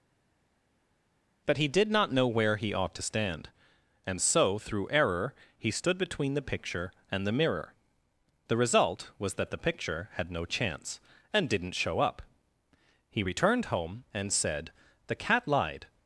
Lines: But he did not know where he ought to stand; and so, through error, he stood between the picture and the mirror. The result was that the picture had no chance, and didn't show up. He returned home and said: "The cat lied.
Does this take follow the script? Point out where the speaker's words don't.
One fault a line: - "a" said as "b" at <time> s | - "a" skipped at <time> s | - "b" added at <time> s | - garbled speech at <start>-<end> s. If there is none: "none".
none